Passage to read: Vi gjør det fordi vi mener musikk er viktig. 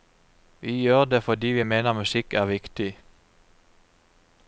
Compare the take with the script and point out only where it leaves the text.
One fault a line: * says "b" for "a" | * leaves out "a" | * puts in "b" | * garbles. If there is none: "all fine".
all fine